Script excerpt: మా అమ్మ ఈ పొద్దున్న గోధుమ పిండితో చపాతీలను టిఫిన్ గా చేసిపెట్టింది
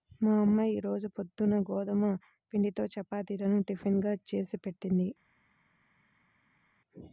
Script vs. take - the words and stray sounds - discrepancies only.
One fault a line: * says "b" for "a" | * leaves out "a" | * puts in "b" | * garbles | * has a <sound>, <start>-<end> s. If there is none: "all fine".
* puts in "రోజు"